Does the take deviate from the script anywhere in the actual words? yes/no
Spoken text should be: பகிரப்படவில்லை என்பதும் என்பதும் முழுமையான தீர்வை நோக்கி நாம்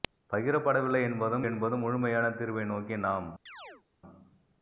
no